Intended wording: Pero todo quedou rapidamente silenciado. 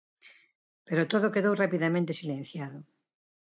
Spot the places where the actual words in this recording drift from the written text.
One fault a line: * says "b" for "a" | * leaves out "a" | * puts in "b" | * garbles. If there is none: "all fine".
all fine